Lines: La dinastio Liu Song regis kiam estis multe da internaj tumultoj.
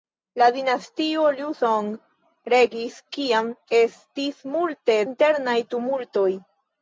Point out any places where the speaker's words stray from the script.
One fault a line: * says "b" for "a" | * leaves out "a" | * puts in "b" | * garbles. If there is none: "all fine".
* leaves out "da"